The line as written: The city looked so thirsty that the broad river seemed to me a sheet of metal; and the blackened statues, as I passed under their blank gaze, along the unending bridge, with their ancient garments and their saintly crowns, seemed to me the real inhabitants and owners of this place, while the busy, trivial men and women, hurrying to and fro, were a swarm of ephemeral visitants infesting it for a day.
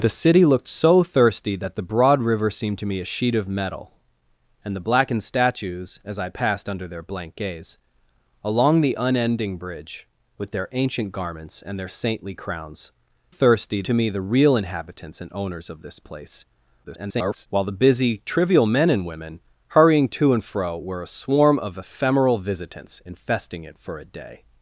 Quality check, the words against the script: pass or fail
fail